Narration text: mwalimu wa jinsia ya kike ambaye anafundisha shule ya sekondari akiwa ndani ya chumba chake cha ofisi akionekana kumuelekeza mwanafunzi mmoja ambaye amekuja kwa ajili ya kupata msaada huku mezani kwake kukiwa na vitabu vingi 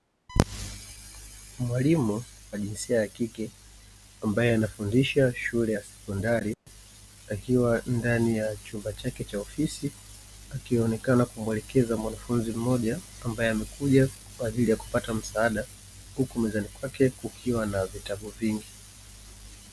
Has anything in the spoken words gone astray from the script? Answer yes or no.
no